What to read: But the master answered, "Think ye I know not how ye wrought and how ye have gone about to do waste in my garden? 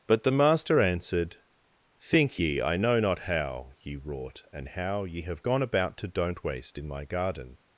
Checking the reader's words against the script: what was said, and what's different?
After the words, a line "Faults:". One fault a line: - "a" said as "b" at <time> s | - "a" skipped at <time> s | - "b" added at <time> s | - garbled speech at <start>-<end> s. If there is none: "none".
But the master answered, "Think ye I know not how ye wrought and how ye have gone about to don't waste in my garden?
Faults:
- "do" said as "don't" at 6.1 s